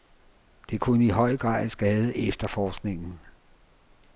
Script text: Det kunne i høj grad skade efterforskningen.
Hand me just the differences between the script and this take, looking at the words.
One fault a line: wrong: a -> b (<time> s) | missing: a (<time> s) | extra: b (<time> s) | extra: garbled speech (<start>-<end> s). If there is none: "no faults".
no faults